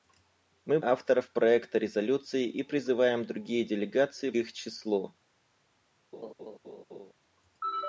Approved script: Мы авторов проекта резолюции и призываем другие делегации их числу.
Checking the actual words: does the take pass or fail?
pass